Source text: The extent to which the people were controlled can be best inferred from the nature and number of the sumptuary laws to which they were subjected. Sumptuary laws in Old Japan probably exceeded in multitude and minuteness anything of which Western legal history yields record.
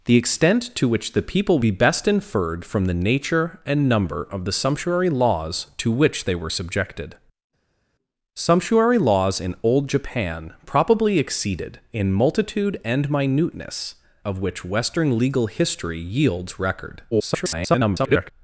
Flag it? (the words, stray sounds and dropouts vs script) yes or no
yes